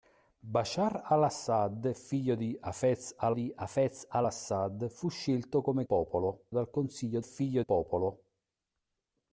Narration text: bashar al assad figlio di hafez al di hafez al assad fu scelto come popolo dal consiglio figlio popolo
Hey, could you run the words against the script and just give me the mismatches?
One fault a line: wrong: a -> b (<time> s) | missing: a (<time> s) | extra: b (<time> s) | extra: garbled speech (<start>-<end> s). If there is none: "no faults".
no faults